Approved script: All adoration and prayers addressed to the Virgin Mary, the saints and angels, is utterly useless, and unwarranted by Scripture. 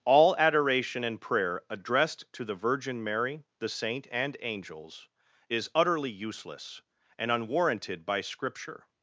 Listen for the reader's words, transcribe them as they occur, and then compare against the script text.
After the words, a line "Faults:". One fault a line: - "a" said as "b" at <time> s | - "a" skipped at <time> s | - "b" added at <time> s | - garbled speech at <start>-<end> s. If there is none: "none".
All adoration and prayer addressed to the Virgin Mary, the saint and angels, is utterly useless, and unwarranted by Scripture.
Faults:
- "prayers" said as "prayer" at 1.2 s
- "saints" said as "saint" at 3.7 s